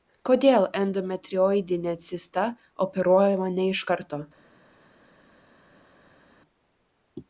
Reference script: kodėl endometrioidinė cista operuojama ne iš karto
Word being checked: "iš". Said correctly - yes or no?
yes